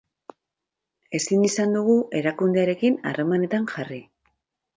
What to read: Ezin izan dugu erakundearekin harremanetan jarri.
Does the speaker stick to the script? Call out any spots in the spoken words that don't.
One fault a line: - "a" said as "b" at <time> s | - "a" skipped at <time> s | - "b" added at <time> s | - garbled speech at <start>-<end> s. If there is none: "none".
none